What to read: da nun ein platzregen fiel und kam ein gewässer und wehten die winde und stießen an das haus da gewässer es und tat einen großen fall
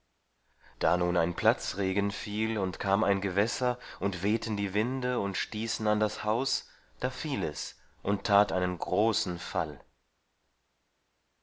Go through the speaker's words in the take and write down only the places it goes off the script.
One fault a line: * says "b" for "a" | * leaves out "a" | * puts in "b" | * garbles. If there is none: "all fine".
* says "fiel" for "gewässer"